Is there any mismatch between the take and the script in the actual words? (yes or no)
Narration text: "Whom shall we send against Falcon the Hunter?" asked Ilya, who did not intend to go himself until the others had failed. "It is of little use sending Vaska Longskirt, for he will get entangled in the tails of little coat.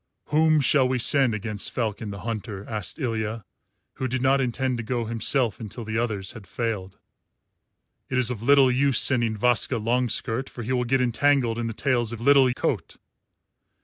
no